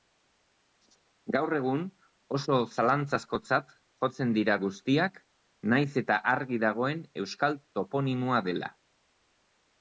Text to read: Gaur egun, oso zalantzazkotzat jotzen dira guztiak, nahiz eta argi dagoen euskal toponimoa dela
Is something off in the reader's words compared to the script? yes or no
no